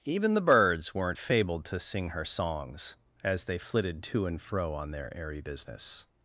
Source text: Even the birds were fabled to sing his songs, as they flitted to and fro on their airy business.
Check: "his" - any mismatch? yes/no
yes